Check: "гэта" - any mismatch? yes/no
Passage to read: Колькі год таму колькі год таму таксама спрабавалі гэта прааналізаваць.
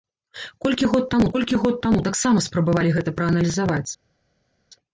no